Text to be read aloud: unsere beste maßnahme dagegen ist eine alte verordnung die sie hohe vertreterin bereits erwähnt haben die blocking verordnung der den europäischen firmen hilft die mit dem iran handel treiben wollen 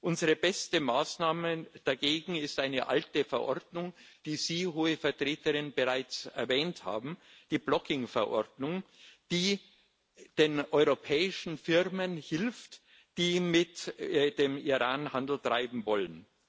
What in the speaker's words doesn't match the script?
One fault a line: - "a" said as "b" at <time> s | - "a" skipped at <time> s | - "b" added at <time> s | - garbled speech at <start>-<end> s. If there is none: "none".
- "der" said as "die" at 9.3 s